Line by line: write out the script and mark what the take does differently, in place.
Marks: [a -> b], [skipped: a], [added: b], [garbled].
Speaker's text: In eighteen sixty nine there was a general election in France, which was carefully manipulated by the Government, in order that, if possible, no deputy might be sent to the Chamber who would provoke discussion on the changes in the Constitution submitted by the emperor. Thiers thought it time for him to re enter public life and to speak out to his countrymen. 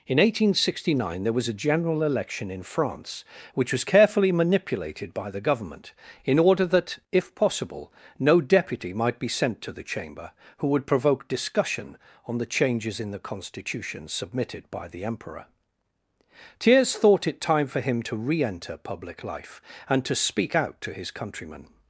In eighteen sixty nine there was a general election in France, which was carefully manipulated by the Government, in order that, if possible, no deputy might be sent to the Chamber who would provoke discussion on the changes in the Constitution submitted by the emperor. Thiers thought it time for him to re enter public life and to speak out to his countrymen.